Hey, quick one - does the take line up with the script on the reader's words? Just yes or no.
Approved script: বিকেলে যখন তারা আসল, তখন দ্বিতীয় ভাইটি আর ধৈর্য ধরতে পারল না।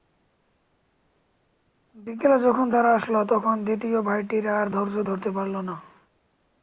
yes